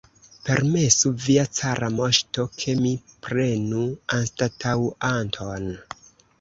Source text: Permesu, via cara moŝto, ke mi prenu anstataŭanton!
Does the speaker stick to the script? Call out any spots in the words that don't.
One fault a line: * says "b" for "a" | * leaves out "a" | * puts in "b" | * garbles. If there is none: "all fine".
all fine